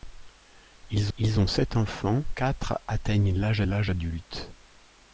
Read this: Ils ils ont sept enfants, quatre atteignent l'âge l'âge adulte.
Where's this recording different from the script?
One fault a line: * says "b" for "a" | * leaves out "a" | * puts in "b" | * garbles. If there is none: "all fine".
all fine